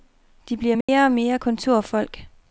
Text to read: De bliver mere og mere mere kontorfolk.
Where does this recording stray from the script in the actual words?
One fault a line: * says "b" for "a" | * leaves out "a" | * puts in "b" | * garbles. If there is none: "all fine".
* leaves out "mere"